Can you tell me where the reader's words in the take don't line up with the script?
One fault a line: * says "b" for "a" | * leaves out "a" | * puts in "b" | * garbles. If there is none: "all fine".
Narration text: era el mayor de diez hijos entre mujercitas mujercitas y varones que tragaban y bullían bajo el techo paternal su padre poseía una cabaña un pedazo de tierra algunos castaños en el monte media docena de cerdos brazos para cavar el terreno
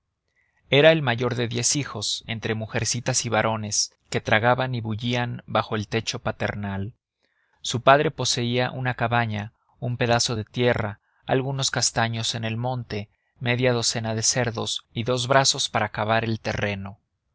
* leaves out "mujercitas"
* puts in "y dos"